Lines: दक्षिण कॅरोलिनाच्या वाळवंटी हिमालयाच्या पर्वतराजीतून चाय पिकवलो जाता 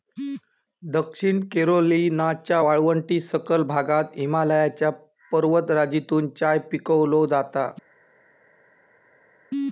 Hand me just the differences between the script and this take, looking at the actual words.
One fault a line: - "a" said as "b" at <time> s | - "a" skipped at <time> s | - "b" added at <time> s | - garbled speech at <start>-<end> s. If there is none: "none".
- "सखल भागात" added at 3.2 s